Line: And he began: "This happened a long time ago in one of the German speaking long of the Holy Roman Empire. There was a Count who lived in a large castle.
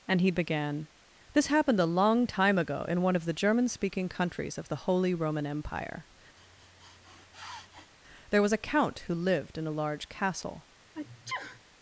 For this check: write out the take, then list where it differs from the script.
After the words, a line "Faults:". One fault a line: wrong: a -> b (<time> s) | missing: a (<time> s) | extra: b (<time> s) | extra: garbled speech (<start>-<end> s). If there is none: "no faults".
And he began: "This happened a long time ago in one of the German speaking countries of the Holy Roman Empire. There was a Count who lived in a large castle.
Faults:
wrong: long -> countries (4.1 s)